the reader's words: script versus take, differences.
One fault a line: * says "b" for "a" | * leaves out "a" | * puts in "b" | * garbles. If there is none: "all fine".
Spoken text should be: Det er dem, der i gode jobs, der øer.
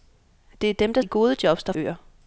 all fine